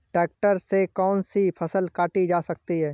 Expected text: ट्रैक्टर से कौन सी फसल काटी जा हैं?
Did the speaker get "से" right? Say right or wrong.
right